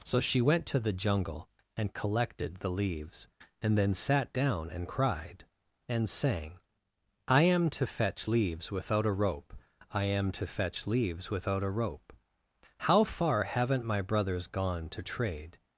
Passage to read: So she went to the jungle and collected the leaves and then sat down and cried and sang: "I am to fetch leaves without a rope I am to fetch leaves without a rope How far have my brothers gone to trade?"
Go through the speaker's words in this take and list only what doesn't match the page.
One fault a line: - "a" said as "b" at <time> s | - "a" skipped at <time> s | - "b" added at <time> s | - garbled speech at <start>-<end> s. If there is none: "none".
- "have" said as "haven't" at 13.4 s